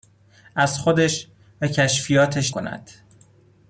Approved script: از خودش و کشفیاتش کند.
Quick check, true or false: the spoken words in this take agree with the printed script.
true